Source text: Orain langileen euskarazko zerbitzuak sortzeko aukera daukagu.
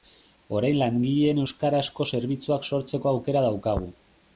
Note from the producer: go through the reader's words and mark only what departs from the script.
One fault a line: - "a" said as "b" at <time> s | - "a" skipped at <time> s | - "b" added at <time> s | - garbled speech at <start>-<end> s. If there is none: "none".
none